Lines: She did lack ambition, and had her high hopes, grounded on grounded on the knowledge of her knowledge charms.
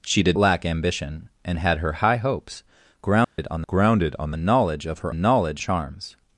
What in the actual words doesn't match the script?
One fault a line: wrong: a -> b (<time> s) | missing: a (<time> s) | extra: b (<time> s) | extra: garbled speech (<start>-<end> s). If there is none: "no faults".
no faults